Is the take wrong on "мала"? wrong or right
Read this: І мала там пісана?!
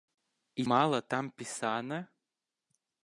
right